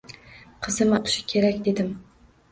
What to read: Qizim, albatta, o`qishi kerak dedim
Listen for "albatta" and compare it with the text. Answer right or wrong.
wrong